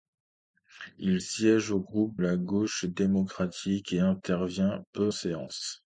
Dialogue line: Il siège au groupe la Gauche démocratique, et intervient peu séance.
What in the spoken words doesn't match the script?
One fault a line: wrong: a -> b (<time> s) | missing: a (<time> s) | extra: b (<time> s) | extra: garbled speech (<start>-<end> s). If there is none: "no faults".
no faults